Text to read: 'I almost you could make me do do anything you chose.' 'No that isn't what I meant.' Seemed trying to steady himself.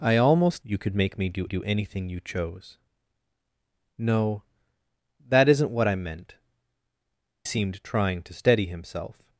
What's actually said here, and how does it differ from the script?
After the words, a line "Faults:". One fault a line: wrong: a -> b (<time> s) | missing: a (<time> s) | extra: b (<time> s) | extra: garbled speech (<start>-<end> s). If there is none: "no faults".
'I almost you could make me do do anything you chose.' 'No that isn't what I meant.' Seemed trying to steady himself.
Faults:
no faults